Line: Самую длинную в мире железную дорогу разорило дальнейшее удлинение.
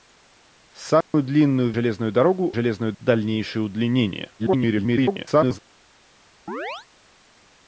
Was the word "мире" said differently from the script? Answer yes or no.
yes